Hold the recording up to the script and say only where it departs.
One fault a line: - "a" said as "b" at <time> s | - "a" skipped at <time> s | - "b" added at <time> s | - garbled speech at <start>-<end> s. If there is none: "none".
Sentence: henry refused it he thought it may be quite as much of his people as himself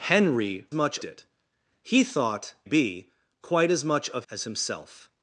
- "refused" said as "much" at 0.7 s
- "it may" skipped at 2.5 s
- "his people" skipped at 4.3 s